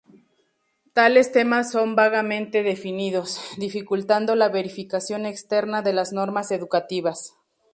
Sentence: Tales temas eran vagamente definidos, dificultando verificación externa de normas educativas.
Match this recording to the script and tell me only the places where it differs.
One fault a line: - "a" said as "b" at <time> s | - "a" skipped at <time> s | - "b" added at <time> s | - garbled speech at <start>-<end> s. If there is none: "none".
- "eran" said as "son" at 1.7 s
- "la" added at 4.3 s
- "las" added at 5.9 s